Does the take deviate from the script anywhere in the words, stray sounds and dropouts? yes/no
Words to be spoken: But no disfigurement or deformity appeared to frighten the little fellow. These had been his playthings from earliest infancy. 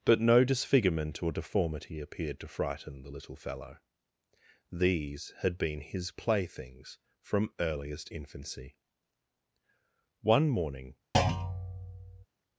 yes